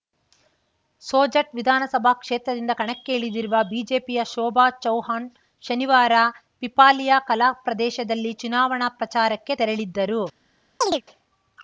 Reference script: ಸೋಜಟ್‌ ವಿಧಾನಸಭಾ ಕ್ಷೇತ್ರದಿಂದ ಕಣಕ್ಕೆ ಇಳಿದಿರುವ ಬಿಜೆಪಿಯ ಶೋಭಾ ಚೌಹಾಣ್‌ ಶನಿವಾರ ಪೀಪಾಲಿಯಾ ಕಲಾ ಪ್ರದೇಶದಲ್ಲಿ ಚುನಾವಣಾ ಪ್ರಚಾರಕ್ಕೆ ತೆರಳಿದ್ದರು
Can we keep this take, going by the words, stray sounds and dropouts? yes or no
no